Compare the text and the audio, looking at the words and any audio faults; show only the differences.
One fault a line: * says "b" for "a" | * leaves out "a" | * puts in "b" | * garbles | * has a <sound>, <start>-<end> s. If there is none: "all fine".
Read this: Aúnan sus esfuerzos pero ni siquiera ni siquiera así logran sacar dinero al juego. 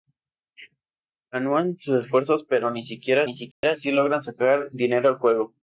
* has a dropout, 3.5-3.6 s